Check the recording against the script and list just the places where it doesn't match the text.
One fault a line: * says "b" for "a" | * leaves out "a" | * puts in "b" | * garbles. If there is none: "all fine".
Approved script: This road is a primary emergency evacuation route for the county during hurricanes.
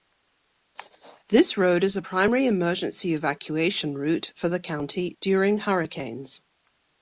all fine